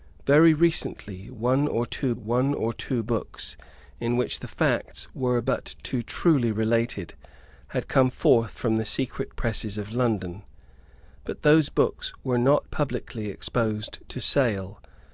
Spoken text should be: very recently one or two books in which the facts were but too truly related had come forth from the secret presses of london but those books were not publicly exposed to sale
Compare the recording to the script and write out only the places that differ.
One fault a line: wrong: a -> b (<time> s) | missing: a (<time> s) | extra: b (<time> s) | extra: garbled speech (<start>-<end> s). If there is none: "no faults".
extra: one or two (2.1 s)